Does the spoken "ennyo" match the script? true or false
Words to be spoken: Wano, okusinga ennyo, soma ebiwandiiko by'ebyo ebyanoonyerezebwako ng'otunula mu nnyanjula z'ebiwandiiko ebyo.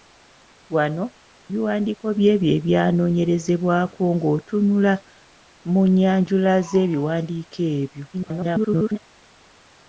false